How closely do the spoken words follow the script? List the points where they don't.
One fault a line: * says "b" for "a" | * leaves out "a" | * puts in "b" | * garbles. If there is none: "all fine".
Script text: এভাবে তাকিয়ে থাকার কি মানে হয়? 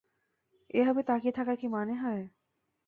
all fine